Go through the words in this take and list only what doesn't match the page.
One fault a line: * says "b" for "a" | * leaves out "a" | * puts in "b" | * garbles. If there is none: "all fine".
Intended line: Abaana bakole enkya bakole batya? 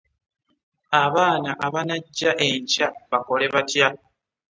* says "abanajja" for "bakole"